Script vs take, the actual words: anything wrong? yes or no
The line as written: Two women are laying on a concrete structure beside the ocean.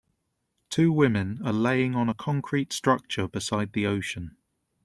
no